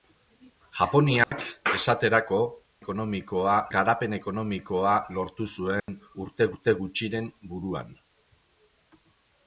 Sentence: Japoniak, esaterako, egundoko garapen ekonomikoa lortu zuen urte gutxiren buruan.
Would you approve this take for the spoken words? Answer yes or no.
no